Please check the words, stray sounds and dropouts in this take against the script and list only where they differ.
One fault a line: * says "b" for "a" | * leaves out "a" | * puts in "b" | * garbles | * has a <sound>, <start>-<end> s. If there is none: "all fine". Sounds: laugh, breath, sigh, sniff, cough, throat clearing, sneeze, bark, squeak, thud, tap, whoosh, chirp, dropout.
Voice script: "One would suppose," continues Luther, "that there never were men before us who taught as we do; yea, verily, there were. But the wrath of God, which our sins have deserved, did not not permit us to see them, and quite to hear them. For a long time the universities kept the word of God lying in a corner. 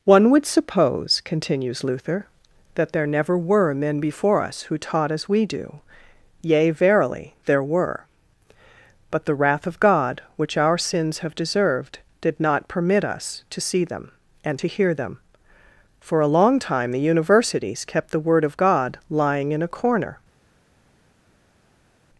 * leaves out "not"
* leaves out "quite"